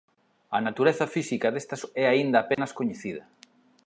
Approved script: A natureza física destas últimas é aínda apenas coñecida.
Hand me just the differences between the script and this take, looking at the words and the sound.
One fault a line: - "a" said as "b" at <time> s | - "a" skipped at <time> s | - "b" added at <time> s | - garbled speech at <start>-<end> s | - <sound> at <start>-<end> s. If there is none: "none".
- "últimas" skipped at 1.8 s
- dropout at 2.5-2.6 s